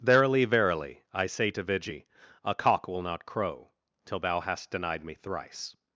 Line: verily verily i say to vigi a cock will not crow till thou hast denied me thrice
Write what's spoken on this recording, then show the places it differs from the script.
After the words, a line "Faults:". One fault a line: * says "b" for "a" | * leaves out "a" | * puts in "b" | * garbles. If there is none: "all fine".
verily verily i say to vigi a cock will not crow till thou hast denied me thrice
Faults:
all fine